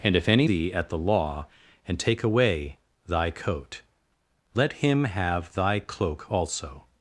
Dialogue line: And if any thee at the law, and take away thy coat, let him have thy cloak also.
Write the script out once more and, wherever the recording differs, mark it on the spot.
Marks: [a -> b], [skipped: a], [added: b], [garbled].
And if any thee at the law, and take away thy coat, let him have thy cloak also.